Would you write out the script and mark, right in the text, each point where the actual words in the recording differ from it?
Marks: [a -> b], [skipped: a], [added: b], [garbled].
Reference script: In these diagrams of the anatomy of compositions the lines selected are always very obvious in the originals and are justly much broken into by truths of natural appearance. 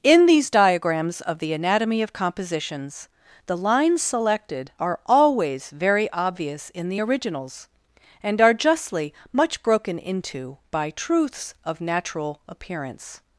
In these diagrams of the anatomy of compositions the lines selected are always very obvious in the originals and are justly much broken into by truths of natural appearance.